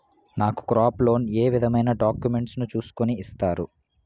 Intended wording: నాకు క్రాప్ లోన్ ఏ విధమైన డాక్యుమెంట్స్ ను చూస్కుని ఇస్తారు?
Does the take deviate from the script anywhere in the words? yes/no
no